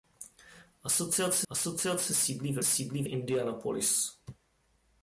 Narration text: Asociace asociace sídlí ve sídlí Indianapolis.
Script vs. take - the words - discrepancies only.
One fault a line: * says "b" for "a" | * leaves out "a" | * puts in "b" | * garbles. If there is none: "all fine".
all fine